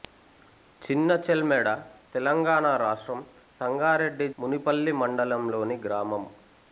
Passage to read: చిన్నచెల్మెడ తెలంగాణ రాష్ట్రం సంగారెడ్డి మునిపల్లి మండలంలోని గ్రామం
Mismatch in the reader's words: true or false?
false